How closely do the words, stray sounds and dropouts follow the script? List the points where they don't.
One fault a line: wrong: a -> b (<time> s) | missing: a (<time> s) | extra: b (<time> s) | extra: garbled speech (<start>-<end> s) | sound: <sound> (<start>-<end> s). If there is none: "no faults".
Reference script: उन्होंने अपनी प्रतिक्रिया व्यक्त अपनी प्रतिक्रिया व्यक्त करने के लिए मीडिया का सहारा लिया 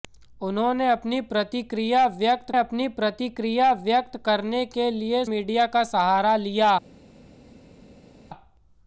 no faults